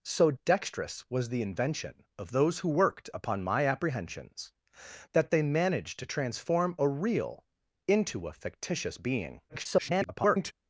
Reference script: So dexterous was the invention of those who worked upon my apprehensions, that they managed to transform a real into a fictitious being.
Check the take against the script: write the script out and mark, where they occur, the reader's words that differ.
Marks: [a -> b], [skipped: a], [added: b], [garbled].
So dexterous was the invention of those who worked upon my apprehensions, that they managed to transform a real into a fictitious being. [garbled]